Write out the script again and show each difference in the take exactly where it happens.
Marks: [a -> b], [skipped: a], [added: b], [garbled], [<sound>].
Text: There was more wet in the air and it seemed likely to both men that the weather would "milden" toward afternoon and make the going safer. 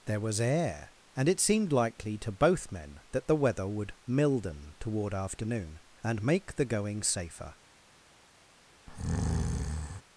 There was [skipped: more wet in the] air and it seemed likely to both men that the weather would "milden" toward afternoon and make the going safer. [breath]